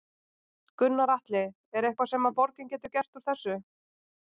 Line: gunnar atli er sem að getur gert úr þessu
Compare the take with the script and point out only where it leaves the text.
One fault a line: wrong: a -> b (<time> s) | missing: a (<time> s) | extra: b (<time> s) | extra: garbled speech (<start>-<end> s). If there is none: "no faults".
extra: eitthvað (1.9 s)
extra: borgin (2.4 s)